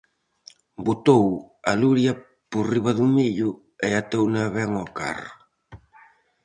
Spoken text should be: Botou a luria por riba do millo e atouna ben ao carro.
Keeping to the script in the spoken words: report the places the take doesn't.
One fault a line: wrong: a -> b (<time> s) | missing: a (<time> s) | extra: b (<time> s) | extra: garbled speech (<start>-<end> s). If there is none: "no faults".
no faults